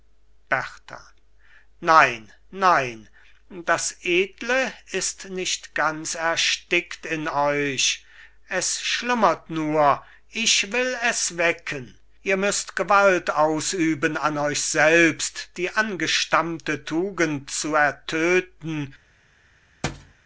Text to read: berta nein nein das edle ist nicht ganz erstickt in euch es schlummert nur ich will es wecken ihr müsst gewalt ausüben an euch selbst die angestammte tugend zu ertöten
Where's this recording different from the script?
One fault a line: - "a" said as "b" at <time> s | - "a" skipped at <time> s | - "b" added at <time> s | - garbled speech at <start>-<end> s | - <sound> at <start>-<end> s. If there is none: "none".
- thud at 19.8-20.1 s